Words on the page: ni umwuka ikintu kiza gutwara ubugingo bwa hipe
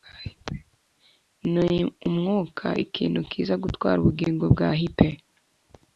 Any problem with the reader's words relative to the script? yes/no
no